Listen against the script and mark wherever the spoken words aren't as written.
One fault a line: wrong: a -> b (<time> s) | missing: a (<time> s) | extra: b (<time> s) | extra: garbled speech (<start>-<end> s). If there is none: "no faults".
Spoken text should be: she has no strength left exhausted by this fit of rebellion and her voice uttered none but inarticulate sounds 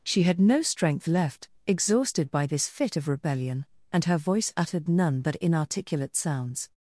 wrong: has -> had (0.2 s)